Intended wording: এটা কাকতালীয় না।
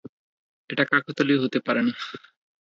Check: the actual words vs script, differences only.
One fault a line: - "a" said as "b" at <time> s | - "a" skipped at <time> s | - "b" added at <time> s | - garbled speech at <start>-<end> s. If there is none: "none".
- "হতে পারে" added at 1.4 s